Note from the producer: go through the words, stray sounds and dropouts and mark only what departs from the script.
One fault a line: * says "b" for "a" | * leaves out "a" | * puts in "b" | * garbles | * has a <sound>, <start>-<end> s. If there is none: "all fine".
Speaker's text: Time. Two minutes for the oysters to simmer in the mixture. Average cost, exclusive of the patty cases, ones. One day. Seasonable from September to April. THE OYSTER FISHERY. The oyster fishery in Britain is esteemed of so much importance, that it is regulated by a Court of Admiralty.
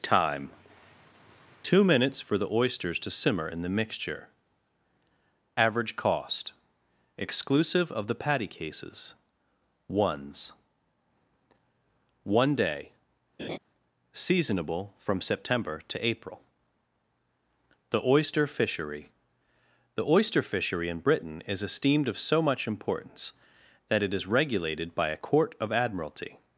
* has a laugh, 13.4-13.6 s